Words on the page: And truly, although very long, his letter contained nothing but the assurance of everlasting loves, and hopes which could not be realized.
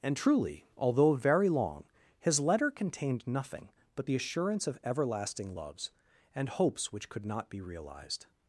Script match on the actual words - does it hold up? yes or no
yes